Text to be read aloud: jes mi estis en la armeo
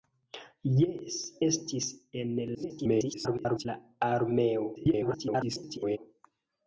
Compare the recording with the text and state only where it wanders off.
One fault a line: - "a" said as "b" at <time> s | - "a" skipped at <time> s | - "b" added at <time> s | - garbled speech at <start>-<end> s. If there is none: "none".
- "mi" skipped at 1.2 s
- garbled speech at 2.5-3.7 s
- garbled speech at 4.8-6.0 s